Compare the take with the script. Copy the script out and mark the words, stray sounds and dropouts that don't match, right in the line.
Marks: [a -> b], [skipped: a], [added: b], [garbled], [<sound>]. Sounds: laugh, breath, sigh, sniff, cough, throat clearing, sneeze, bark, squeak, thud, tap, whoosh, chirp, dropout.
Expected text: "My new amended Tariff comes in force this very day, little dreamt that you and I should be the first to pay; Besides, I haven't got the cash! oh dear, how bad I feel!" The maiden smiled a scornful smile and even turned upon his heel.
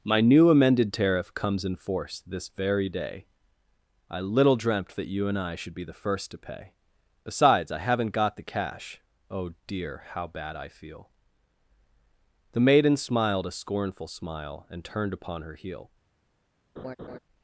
"My new amended Tariff comes in force this very day, [added: I] little dreamt that you and I should be the first to pay; Besides, I haven't got the cash! oh dear, how bad I feel!" The maiden smiled a scornful smile and [skipped: even] turned upon [his -> her] heel. [laugh]